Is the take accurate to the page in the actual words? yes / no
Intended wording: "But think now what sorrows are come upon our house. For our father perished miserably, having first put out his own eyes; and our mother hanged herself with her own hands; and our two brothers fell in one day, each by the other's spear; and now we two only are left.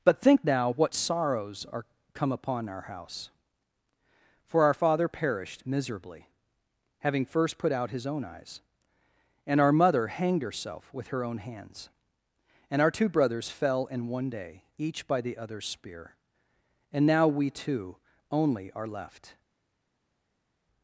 yes